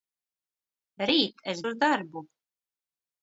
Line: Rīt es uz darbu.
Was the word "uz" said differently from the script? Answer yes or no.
no